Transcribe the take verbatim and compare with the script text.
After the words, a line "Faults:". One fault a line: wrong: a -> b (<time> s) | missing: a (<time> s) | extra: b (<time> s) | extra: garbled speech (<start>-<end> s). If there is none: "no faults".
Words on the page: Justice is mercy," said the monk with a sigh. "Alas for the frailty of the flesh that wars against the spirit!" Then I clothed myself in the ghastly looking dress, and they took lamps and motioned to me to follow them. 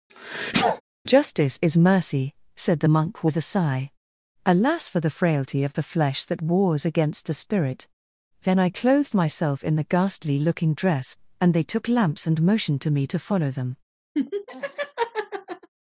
Justice is mercy," said the monk with a sigh. "Alas for the frailty of the flesh that wars against the spirit!" Then I clothed myself in the ghastly looking dress, and they took lamps and motioned to me to follow them.
Faults:
no faults